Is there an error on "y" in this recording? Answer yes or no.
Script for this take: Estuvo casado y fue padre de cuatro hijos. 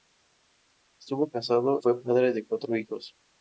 yes